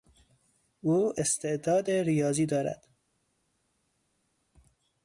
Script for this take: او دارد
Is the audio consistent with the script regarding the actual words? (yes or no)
no